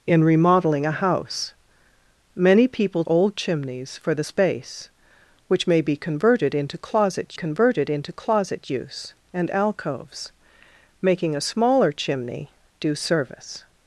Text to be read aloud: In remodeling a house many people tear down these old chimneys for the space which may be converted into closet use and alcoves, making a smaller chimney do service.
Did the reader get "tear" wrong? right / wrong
wrong